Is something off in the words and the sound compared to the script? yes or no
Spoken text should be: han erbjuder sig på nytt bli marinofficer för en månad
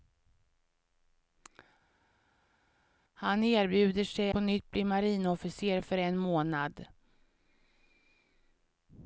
no